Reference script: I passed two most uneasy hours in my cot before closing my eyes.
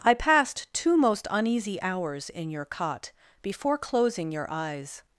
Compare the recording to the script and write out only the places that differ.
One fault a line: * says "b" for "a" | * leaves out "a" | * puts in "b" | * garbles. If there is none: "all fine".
* says "your" for "my"
* says "your" for "my"